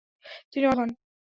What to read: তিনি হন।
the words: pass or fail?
pass